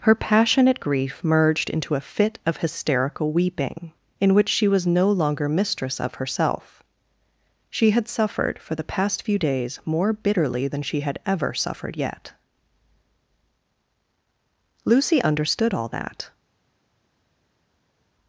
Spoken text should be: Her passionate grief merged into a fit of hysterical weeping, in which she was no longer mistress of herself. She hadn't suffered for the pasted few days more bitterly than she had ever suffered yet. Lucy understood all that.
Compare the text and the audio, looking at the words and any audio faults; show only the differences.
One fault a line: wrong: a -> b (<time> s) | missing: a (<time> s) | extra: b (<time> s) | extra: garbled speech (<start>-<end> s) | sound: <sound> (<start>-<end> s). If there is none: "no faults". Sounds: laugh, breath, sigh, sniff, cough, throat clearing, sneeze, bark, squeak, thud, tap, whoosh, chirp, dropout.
wrong: hadn't -> had (7.9 s)
wrong: pasted -> past (8.8 s)